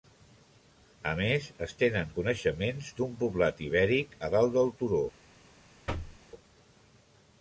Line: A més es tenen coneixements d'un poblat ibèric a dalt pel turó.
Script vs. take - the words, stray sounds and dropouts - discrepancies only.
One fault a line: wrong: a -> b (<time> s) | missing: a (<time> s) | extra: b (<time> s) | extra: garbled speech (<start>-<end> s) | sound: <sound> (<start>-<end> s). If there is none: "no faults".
wrong: pel -> del (4.6 s)
sound: thud (5.9-6.2 s)